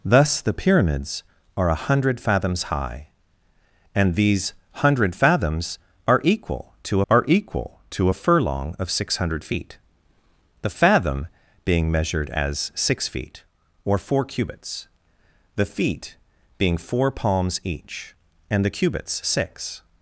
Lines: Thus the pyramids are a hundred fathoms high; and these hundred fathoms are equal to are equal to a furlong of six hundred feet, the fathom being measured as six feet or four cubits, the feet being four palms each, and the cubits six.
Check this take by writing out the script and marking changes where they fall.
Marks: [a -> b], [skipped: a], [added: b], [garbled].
Thus the pyramids are a hundred fathoms high; and these hundred fathoms are equal to are equal to a furlong of six hundred feet, the fathom being measured as six feet or four cubits, the feet being four palms each, and the cubits six.